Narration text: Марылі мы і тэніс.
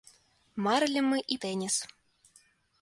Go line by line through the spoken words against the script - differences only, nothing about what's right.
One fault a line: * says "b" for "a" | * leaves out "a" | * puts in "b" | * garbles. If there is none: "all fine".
all fine